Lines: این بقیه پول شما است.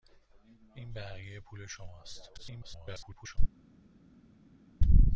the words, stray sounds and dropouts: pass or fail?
fail